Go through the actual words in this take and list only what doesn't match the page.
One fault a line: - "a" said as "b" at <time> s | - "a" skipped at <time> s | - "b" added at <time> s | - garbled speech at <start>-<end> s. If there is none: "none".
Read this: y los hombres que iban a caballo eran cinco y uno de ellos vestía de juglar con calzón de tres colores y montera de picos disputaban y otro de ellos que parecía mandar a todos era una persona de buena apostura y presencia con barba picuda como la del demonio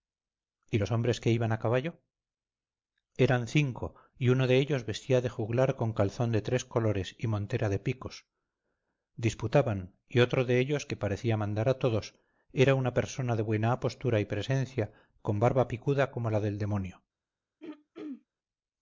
none